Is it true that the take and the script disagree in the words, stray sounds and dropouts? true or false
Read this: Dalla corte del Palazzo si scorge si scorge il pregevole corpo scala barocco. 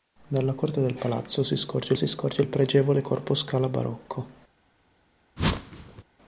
true